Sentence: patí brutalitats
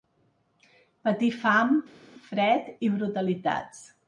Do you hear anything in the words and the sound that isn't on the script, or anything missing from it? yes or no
yes